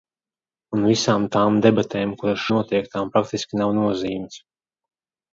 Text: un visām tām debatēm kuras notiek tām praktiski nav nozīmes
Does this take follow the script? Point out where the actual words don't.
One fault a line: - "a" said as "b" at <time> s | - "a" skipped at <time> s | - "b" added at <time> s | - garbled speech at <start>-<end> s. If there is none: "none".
none